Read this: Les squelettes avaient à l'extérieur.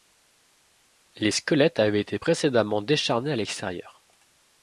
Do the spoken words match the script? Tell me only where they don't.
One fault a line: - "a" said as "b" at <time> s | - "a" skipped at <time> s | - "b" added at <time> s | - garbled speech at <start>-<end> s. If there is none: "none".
- "été précédemment décharnés" added at 2.0 s